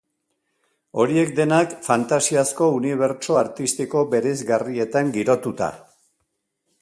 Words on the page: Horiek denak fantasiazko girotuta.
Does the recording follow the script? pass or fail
fail